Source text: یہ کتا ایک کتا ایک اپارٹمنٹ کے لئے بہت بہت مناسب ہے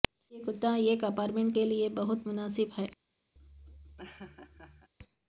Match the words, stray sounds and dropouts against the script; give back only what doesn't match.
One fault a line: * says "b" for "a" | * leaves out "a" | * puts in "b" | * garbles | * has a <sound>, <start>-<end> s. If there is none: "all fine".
* leaves out "کتا ایک"
* leaves out "بہت"
* has a laugh, 3.4-4.9 s